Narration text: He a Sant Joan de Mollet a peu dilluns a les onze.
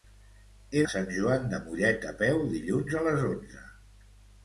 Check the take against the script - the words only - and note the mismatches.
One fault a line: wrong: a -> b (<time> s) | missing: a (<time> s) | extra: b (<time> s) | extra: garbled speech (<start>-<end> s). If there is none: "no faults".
no faults